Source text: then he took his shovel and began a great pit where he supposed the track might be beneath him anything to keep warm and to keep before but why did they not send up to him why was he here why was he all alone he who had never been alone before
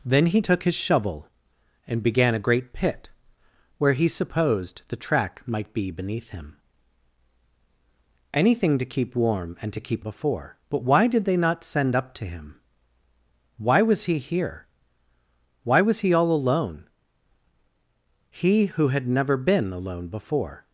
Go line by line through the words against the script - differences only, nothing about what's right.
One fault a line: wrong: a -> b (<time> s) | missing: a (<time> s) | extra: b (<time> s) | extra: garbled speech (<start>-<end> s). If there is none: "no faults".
no faults